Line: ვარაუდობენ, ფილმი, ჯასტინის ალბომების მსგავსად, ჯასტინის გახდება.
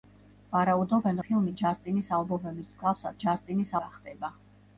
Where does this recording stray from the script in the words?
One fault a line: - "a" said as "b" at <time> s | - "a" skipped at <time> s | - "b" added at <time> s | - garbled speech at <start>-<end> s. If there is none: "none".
none